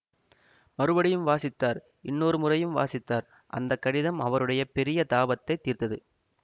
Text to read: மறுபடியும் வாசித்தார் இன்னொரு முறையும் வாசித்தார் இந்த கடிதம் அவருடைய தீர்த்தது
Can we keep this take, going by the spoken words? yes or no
no